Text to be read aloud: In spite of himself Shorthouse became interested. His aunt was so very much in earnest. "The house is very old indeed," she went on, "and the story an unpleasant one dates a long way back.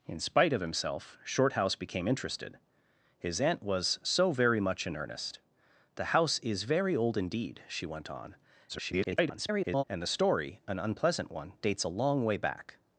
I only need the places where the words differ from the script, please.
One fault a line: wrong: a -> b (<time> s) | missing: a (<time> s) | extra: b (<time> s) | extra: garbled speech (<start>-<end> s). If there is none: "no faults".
extra: garbled speech (8.7-9.8 s)